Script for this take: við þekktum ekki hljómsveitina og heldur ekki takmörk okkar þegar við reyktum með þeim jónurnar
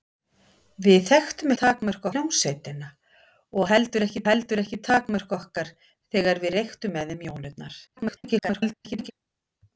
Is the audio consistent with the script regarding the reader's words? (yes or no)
no